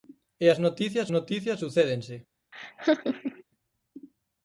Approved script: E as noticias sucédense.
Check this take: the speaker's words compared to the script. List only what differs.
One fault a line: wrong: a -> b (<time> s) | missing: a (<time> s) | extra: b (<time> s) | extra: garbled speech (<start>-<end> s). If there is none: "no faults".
extra: noticias (1.1 s)